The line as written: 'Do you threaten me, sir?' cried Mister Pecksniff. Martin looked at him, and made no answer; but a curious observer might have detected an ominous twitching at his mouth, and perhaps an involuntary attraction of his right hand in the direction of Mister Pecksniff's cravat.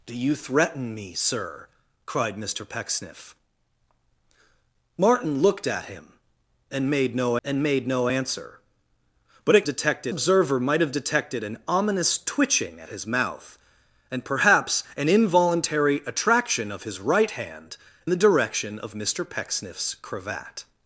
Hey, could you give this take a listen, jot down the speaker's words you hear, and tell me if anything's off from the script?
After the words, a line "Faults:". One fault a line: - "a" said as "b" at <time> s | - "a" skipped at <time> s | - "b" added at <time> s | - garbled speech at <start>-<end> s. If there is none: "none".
'Do you threaten me, sir?' cried Mister Pecksniff. Martin looked at him, and made no and made no answer; but a detected observer might have detected an ominous twitching at his mouth, and perhaps an involuntary attraction of his right hand the direction of Mister Pecksniff's cravat.
Faults:
- "and made no" added at 7.4 s
- "curious" said as "detected" at 9.6 s
- "in" skipped at 17.8 s